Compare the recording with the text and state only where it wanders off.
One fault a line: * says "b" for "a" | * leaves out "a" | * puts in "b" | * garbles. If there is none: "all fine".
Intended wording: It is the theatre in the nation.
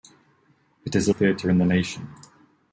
all fine